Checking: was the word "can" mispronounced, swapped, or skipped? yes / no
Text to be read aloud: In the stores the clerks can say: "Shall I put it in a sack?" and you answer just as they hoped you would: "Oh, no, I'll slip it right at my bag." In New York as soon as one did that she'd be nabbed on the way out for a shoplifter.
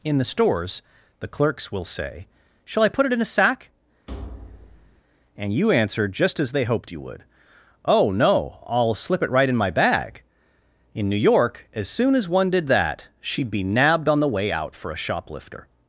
yes